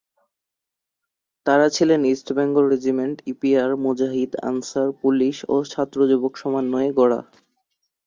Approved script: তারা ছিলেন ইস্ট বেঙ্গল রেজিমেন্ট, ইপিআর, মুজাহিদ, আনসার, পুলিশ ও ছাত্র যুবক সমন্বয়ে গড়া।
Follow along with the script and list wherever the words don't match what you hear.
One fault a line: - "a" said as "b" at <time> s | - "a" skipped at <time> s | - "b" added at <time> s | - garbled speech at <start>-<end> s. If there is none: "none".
none